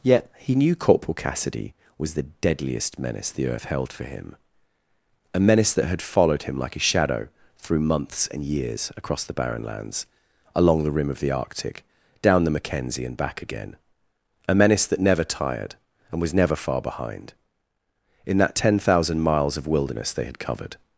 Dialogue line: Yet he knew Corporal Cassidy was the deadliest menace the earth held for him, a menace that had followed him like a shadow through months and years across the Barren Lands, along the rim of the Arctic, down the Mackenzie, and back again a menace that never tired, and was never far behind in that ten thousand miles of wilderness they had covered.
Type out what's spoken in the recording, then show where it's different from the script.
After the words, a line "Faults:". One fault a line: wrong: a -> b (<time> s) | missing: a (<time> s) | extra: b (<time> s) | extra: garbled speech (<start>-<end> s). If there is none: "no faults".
Yet he knew Corporal Cassidy was the deadliest menace the earth held for him, a menace that had followed him like a shadow through months and years across the Barren Lands, along the rim of the Arctic, down the Mackenzie, and back again a menace that never tired, and was never far behind in that ten thousand miles of wilderness they had covered.
Faults:
no faults